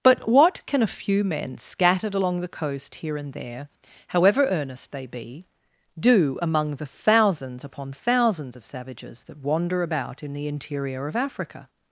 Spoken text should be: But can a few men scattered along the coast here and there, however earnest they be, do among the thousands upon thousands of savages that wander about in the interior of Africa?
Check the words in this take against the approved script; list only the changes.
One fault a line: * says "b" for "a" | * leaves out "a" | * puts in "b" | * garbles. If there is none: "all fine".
* puts in "what"